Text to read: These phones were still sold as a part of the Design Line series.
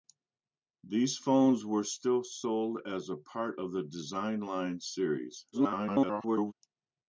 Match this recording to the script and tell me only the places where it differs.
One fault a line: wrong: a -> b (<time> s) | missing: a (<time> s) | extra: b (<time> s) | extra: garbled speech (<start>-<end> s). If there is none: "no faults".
extra: garbled speech (5.5-6.5 s)